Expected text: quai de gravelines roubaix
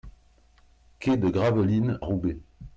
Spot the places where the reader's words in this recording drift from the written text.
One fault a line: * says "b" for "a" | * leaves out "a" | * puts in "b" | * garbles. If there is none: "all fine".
all fine